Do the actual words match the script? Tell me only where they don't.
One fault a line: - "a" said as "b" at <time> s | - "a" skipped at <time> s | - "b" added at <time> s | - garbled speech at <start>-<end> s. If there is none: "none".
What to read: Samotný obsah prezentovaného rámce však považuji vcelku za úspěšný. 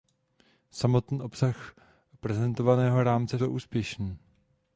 - "však považuji vcelku" skipped at 3.4 s